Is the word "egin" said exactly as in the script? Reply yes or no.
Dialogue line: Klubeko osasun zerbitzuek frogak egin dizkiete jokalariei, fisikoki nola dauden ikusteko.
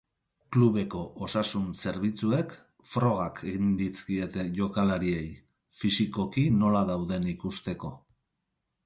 yes